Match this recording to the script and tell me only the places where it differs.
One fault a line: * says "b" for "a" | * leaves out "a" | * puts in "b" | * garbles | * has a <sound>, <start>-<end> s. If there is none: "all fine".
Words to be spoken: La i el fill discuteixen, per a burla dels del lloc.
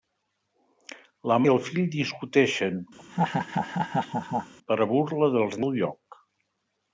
* has a laugh, 3.0-4.5 s